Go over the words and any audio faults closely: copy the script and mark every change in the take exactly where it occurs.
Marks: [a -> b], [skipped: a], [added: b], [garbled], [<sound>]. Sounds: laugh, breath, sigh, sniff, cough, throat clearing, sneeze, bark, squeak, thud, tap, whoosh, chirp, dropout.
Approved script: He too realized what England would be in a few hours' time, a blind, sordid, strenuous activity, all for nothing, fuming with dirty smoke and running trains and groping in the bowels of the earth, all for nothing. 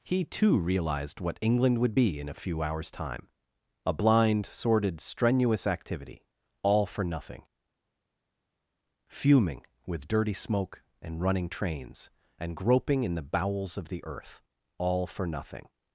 He too realized what England would be in a few hours' time, a blind, sordid, strenuous activity, all for nothing, fuming with dirty smoke and running trains and groping in the bowels of the earth, all for nothing.